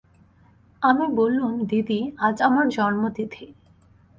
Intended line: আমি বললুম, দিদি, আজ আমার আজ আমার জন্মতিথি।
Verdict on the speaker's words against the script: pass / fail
fail